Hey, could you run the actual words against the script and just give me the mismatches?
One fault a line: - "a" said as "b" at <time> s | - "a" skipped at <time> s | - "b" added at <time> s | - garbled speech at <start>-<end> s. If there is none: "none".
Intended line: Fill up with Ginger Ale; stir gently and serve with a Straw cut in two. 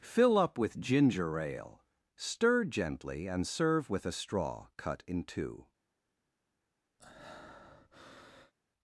none